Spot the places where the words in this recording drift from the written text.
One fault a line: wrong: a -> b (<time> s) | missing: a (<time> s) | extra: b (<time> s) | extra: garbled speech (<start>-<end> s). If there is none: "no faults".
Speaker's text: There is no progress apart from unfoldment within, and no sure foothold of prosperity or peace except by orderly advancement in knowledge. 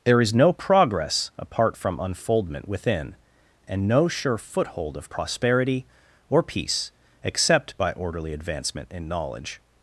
no faults